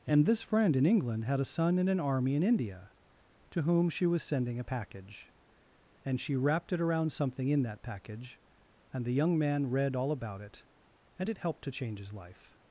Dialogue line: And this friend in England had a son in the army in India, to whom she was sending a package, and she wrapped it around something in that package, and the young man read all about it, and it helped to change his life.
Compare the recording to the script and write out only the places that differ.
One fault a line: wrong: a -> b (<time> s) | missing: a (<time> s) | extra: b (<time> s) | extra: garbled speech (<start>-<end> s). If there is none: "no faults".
wrong: the -> an (1.9 s)